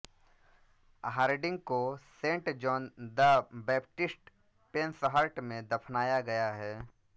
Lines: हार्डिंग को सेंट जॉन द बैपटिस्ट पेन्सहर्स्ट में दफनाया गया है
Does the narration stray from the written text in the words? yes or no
no